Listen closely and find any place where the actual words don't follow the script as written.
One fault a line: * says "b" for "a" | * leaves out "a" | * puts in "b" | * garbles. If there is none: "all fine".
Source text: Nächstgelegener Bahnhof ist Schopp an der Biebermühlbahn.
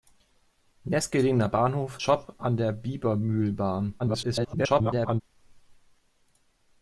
* leaves out "ist"
* garbles